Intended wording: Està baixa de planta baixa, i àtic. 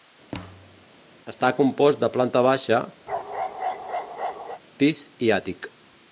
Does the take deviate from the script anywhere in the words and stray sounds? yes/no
yes